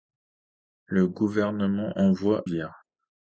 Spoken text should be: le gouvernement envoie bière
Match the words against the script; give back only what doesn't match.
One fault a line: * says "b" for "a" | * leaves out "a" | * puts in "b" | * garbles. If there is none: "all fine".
all fine